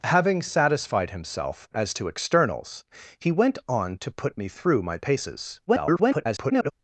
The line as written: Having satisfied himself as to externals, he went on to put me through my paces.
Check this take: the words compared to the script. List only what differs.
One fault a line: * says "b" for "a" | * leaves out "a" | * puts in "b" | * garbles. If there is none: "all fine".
* garbles